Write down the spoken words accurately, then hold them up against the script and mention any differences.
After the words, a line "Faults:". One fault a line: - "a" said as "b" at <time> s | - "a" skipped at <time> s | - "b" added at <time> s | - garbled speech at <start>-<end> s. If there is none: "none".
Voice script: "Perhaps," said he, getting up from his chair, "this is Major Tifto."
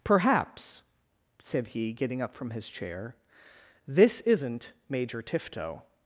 "Perhaps," said he, getting up from his chair, "this isn't Major Tifto."
Faults:
- "is" said as "isn't" at 4.2 s